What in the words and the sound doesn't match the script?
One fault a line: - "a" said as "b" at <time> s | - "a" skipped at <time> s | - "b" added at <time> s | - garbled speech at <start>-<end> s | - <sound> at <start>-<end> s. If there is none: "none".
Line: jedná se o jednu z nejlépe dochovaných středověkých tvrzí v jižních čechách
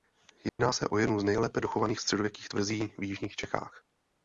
- dropout at 0.5-0.6 s